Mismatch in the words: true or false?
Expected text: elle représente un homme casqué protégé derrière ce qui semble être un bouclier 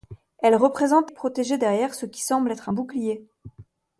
true